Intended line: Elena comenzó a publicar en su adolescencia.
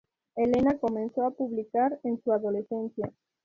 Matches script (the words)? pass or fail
pass